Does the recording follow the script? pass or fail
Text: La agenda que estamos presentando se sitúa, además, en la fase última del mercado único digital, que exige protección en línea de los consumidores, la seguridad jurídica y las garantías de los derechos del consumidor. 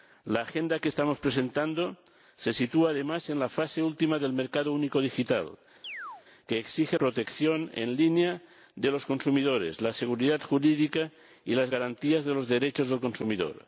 pass